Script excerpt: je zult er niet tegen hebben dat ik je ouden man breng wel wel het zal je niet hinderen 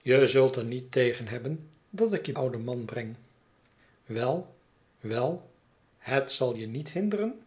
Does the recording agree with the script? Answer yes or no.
yes